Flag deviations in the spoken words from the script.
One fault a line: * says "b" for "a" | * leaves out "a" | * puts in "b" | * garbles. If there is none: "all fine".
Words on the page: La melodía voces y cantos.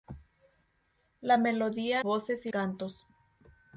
all fine